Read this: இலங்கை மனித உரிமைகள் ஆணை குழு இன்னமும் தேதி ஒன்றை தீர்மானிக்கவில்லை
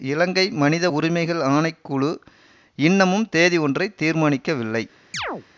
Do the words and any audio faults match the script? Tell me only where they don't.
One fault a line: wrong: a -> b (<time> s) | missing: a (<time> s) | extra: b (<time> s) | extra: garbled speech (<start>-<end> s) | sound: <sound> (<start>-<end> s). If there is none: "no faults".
sound: chirp (5.1-5.5 s)